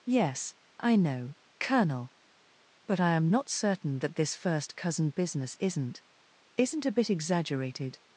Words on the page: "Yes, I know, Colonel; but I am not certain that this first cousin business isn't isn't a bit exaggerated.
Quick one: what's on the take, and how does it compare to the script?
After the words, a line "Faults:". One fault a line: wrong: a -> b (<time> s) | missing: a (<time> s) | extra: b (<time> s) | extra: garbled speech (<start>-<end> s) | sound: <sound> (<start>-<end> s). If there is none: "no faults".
"Yes, I know, Colonel; but I am not certain that this first cousin business isn't isn't a bit exaggerated.
Faults:
no faults